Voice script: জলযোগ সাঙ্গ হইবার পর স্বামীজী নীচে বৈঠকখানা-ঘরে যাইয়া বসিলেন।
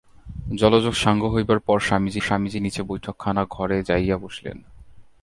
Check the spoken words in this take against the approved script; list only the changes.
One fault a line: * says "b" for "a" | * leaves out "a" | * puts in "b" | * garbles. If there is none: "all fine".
* puts in "স্বামীজী"